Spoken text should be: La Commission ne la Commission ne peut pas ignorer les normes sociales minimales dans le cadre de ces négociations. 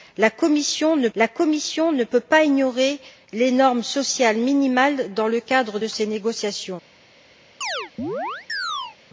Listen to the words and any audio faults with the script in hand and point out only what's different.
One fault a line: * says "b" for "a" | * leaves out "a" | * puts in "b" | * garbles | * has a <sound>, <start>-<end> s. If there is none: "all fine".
* has a chirp, 7.6-9.0 s